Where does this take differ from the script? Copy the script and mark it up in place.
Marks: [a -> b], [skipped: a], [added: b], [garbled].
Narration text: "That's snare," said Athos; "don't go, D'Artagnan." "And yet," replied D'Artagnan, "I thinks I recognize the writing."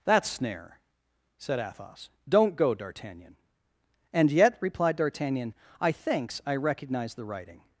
"That's snare," said Athos; "don't go, D'Artagnan." "And yet," replied D'Artagnan, "I thinks I recognize the writing."